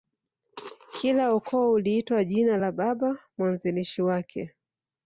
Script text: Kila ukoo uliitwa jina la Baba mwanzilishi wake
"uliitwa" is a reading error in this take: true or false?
false